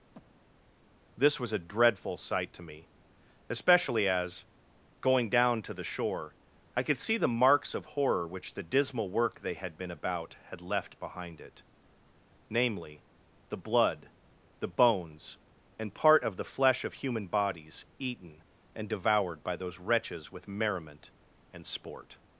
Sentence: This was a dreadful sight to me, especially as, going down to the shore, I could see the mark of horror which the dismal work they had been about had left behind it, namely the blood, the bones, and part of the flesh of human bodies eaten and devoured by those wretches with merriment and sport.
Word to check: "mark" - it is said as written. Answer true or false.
false